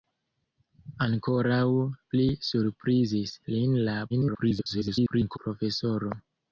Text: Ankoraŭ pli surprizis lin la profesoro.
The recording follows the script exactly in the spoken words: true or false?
false